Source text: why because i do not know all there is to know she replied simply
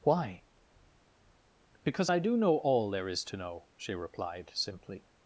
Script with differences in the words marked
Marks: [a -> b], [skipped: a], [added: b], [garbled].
why because i do [skipped: not] know all there is to know she replied simply